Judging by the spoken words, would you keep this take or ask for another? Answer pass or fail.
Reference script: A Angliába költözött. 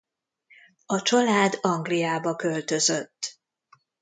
fail